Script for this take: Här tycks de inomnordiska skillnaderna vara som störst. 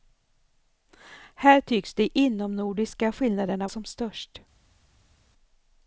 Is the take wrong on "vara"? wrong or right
wrong